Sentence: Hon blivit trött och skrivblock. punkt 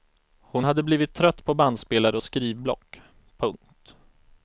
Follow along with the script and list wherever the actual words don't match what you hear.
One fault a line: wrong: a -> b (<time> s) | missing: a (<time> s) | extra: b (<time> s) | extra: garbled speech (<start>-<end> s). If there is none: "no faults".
extra: hade (0.6 s)
extra: på bandspelare (1.4 s)